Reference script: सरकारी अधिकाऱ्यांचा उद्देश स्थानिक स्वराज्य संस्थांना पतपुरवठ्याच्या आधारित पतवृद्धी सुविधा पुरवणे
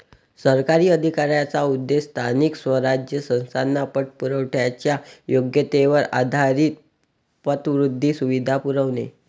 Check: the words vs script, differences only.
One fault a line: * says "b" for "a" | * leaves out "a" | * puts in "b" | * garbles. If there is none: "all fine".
* puts in "योग्यतेवर"